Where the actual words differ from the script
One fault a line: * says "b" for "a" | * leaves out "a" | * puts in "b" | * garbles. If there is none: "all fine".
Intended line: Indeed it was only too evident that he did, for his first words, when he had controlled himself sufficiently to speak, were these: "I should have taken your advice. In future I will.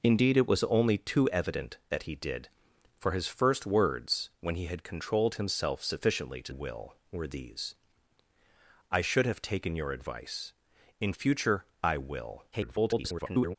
* says "will" for "speak"
* garbles